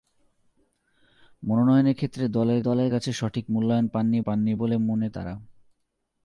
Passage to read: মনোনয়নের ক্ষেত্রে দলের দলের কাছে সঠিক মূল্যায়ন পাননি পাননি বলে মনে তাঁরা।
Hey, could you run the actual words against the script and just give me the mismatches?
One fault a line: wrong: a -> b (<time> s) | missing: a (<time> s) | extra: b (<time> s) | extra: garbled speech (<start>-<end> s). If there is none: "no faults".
no faults